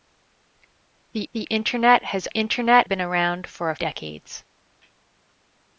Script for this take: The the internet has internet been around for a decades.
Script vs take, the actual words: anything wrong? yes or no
no